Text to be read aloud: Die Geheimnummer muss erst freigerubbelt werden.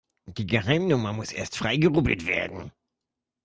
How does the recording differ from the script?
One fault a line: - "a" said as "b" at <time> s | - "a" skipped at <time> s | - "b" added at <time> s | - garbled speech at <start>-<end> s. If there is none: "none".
none